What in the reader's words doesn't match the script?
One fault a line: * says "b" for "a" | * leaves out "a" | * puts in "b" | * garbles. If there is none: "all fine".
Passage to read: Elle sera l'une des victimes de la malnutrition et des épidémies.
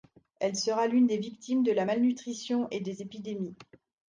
all fine